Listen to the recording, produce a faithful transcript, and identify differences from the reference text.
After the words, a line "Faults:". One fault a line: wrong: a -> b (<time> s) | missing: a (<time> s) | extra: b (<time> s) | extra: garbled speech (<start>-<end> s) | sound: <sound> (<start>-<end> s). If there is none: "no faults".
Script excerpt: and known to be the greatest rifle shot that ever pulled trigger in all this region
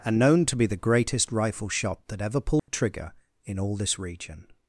and known to be the greatest rifle shot that ever pulled trigger in all this region
Faults:
sound: dropout (2.6-2.7 s)